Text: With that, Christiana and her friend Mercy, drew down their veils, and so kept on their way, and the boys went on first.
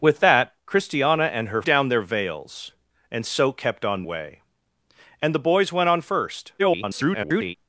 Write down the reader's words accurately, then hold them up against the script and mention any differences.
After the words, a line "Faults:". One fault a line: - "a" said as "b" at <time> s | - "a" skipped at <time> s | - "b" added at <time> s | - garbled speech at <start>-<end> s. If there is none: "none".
With that, Christiana and her down their veils, and so kept on way, and the boys went on first. [garbled]
Faults:
- "friend Mercy drew" skipped at 1.6 s
- "their" skipped at 4.0 s
- garbled speech at 6.6-7.5 s